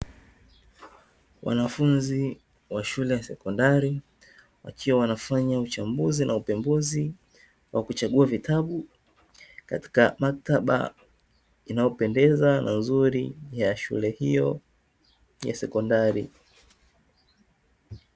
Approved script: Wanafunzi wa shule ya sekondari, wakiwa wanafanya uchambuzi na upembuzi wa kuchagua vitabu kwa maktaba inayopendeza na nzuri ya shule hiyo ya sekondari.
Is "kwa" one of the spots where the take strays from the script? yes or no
yes